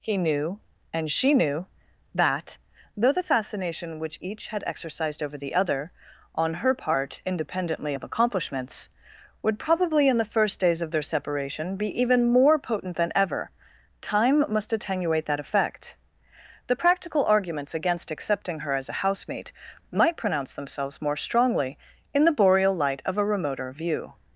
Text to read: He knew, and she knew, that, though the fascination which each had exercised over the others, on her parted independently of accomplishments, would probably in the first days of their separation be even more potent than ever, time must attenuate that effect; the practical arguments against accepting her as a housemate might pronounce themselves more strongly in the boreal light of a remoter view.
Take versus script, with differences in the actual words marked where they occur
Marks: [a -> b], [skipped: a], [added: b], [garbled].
He knew, and she knew, that, though the fascination which each had exercised over the [others, -> other] on her [parted -> part] independently of accomplishments, would probably in the first days of their separation be even more potent than ever, time must attenuate that effect; the practical arguments against accepting her as a housemate might pronounce themselves more strongly in the boreal light of a remoter view.